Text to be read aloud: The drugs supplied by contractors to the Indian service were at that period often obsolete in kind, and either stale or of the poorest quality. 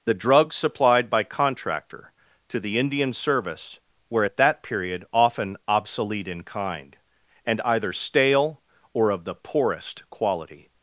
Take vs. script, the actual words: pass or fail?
fail